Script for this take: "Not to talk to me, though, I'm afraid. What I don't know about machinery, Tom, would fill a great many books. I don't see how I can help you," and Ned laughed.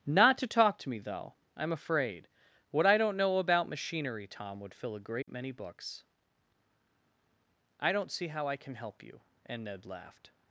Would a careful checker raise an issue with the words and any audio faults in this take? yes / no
yes